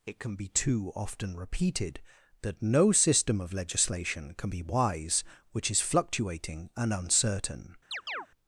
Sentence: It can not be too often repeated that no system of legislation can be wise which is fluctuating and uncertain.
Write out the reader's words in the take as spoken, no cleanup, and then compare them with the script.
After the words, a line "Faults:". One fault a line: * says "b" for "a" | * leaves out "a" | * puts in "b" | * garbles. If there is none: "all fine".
It can be too often repeated that no system of legislation can be wise which is fluctuating and uncertain.
Faults:
* leaves out "not"